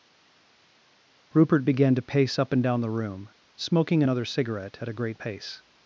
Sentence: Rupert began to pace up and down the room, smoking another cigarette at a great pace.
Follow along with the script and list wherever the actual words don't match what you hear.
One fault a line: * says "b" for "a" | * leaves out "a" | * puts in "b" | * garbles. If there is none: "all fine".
all fine